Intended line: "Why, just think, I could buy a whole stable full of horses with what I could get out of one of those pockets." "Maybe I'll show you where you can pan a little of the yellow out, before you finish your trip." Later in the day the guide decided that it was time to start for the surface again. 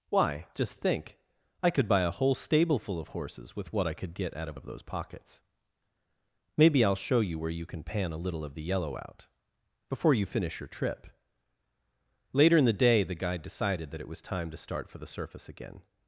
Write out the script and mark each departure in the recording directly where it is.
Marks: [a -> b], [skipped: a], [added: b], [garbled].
"Why, just think, I could buy a whole stable full of horses with what I could get out of [skipped: one] of those pockets." "Maybe I'll show you where you can pan a little of the yellow out, before you finish your trip." Later in the day the guide decided that it was time to start for the surface again.